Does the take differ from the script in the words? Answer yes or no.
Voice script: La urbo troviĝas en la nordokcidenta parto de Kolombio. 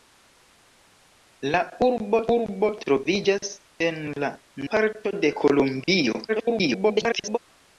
yes